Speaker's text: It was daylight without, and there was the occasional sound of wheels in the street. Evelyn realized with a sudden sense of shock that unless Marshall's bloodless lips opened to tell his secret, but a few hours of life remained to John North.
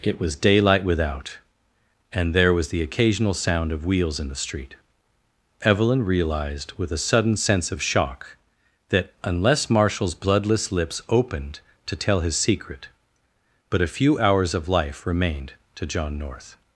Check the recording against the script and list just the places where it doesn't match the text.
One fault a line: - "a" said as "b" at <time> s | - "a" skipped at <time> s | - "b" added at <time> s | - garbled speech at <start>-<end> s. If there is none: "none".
none